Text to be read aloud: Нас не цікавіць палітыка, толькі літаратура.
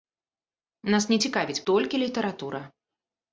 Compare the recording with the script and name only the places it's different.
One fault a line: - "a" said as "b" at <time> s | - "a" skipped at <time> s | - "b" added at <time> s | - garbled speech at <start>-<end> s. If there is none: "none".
- "палітыка" skipped at 1.6 s